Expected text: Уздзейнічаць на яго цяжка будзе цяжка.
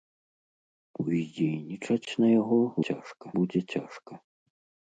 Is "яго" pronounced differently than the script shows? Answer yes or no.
no